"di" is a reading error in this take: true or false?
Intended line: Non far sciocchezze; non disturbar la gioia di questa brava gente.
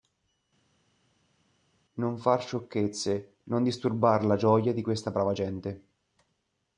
false